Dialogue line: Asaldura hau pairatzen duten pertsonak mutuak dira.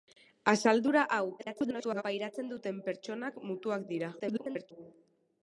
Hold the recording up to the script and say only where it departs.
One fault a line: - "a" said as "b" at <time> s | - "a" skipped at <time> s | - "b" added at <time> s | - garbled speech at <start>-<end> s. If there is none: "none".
- garbled speech at 1.4-2.0 s
- garbled speech at 4.2-4.7 s